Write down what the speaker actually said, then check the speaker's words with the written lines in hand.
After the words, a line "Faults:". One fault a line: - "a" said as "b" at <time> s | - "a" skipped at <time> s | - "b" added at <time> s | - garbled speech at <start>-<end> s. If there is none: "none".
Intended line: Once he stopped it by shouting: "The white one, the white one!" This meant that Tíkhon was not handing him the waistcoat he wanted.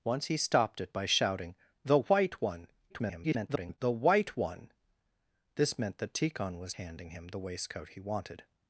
Once he stopped it by shouting: "The white one, [garbled] the white one!" This meant that Tíkhon was handing him the waistcoat he wanted.
Faults:
- garbled speech at 2.9-3.8 s
- "not" skipped at 6.8 s